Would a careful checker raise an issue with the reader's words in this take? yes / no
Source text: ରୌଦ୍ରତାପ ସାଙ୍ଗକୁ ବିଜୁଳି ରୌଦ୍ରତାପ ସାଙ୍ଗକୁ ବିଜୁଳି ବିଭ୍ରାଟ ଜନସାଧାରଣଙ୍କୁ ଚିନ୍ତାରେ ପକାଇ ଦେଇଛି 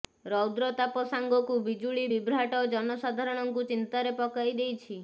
yes